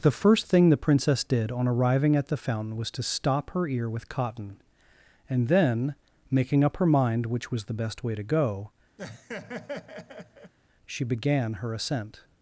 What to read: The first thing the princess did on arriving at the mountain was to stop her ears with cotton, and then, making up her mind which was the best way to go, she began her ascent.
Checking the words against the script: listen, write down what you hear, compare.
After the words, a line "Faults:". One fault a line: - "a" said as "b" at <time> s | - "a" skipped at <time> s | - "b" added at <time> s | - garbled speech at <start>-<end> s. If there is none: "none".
The first thing the princess did on arriving at the fountain was to stop her ear with cotton, and then, making up her mind which was the best way to go, she began her ascent.
Faults:
- "mountain" said as "fountain" at 2.4 s
- "ears" said as "ear" at 3.7 s